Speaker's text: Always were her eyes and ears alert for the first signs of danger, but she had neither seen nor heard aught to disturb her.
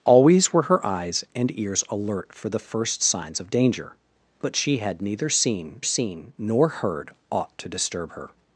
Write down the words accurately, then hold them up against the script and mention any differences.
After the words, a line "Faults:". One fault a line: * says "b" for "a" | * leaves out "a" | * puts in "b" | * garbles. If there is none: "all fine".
Always were her eyes and ears alert for the first signs of danger, but she had neither seen seen nor heard aught to disturb her.
Faults:
* puts in "seen"